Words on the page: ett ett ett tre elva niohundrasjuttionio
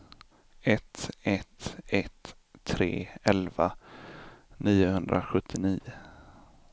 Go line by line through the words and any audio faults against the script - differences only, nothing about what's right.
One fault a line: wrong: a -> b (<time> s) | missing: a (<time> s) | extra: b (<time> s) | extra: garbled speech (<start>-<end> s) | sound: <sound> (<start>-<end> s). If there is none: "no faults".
no faults